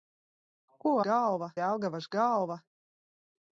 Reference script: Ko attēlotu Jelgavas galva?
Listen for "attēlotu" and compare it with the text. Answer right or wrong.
wrong